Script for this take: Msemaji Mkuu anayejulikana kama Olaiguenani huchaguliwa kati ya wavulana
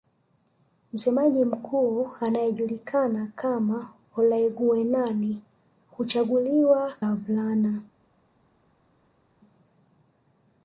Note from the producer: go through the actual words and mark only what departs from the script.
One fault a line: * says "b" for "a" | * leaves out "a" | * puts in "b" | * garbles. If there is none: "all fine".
* leaves out "kati"